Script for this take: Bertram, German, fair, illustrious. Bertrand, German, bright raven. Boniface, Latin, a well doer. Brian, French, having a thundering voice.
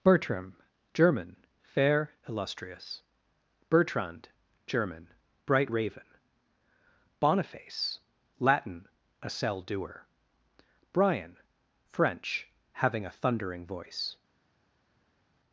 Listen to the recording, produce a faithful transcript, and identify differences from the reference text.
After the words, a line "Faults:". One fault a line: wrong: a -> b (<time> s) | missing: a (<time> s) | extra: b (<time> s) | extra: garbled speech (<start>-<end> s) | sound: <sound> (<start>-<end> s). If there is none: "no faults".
Bertram, German, fair, illustrious. Bertrand, German, bright raven. Boniface, Latin, a cell doer. Brian, French, having a thundering voice.
Faults:
wrong: well -> cell (9.3 s)